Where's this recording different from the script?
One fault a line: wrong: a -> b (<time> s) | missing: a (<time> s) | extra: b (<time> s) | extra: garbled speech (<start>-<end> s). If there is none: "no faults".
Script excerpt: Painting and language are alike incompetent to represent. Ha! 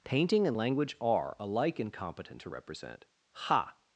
no faults